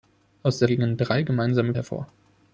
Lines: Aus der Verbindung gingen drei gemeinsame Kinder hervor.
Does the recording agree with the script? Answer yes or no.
no